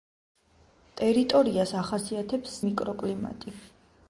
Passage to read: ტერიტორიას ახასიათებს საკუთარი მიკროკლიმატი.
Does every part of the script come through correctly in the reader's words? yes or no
no